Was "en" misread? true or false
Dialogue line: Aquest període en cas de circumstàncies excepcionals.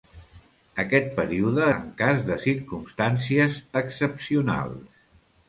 false